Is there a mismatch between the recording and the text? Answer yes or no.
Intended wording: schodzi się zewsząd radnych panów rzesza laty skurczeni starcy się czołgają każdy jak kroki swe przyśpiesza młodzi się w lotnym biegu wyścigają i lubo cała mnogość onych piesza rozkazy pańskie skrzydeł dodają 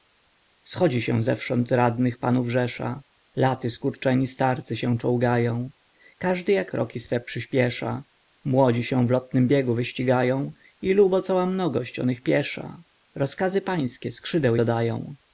no